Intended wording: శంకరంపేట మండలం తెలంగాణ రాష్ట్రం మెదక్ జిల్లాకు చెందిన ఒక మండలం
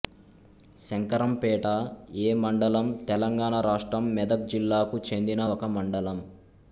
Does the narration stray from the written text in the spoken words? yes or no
yes